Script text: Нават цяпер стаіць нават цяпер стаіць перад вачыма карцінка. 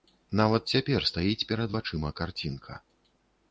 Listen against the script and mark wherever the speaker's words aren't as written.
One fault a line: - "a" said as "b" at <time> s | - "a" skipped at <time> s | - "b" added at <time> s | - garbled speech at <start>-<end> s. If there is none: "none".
- "нават цяпер стаіць" skipped at 1.5 s